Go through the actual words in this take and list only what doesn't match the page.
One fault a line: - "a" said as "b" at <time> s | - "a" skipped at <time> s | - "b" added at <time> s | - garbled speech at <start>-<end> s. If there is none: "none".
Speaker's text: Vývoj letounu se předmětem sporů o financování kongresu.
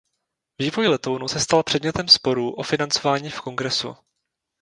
- "stal" added at 1.4 s
- "v" added at 3.3 s